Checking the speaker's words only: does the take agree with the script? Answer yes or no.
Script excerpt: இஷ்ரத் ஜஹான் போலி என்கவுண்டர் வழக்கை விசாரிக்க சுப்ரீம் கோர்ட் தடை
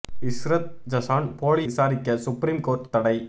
no